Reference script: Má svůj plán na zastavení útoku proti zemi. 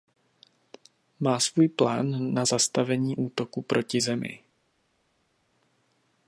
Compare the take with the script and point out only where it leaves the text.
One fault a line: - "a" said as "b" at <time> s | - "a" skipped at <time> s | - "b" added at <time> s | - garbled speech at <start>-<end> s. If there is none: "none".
none